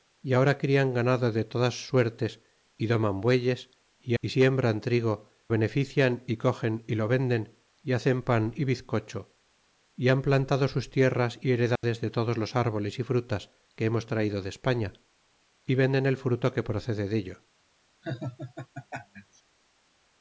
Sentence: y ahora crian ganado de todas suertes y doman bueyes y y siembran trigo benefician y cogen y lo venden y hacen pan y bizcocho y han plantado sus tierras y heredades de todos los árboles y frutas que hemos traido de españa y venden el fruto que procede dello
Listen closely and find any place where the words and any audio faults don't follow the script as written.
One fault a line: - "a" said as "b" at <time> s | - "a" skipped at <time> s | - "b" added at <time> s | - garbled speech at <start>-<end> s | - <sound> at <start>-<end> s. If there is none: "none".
- dropout at 11.8-11.8 s
- laugh at 18.0-19.4 s